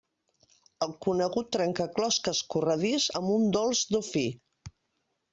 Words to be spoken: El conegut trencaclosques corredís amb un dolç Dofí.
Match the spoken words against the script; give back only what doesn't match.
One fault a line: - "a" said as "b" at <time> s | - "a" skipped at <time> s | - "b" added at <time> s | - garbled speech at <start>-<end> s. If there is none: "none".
none